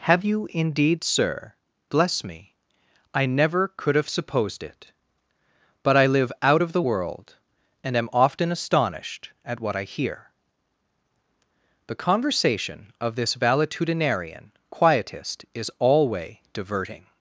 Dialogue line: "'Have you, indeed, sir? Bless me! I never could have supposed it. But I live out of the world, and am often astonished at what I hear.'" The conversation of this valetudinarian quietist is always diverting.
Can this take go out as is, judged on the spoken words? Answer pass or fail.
fail